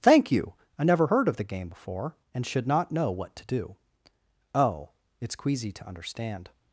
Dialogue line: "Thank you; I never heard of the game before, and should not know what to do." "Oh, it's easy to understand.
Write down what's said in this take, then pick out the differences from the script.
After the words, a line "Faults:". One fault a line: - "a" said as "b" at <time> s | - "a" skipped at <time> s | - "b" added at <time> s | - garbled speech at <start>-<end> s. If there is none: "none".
"Thank you; I never heard of the game before, and should not know what to do." "Oh, it's queasy to understand.
Faults:
- "easy" said as "queasy" at 5.3 s